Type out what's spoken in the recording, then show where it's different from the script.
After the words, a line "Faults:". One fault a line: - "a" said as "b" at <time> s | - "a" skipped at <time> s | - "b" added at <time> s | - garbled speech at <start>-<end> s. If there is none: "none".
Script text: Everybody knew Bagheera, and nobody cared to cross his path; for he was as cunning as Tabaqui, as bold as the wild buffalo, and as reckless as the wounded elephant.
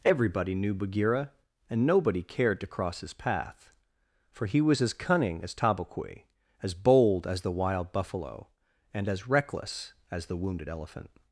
Everybody knew Bagheera, and nobody cared to cross his path; for he was as cunning as Tabaqui, as bold as the wild buffalo, and as reckless as the wounded elephant.
Faults:
none